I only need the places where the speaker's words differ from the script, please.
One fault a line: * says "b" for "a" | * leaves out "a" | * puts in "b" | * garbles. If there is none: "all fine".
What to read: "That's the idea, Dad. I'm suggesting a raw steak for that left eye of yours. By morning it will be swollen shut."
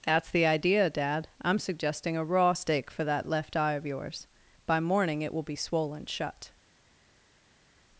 all fine